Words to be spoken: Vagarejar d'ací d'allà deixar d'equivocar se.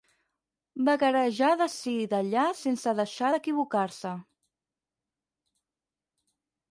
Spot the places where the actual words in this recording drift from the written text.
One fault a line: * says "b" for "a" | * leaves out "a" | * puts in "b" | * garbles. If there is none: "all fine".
* puts in "sense"